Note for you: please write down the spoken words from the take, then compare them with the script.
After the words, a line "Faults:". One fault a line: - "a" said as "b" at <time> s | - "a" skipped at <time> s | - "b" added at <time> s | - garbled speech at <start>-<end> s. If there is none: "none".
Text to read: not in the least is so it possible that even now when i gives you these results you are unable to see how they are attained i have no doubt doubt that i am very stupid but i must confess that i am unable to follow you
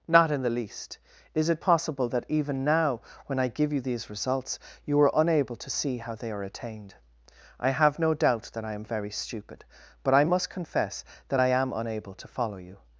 not in the least is it possible that even now when i give you these results you are unable to see how they are attained i have no doubt that i am very stupid but i must confess that i am unable to follow you
Faults:
- "so" skipped at 1.5 s
- "gives" said as "give" at 3.5 s
- "doubt" skipped at 8.5 s